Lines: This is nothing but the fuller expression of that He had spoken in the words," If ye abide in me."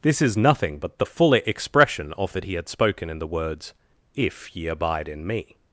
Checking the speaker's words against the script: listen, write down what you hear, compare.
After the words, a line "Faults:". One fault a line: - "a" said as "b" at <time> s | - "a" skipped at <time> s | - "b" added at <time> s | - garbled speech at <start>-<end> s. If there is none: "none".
This is nothing but the fuller expression of that He had spoken in the words," If ye abide in me."
Faults:
none